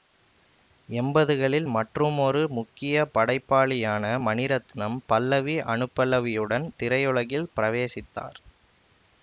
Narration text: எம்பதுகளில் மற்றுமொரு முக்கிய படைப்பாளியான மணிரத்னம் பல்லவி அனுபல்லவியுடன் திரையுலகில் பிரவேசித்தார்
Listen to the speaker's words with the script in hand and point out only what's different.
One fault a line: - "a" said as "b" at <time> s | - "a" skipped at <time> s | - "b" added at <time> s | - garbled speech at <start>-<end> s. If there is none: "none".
none